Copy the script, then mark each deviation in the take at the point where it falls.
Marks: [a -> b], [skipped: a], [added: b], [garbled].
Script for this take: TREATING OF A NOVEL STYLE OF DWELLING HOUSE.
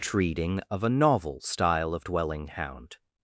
TREATING OF A NOVEL STYLE OF DWELLING [HOUSE. -> Hound]